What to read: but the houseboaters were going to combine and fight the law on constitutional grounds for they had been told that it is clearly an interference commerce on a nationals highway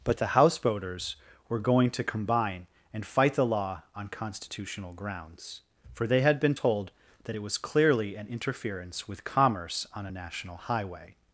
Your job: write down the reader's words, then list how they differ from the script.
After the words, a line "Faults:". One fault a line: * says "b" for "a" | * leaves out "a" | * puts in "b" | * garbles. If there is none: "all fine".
but the houseboaters were going to combine and fight the law on constitutional grounds for they had been told that it was clearly an interference with commerce on a national highway
Faults:
* says "was" for "is"
* puts in "with"
* says "national" for "nationals"